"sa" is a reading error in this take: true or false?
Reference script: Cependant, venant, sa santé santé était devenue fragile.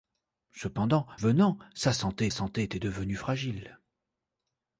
false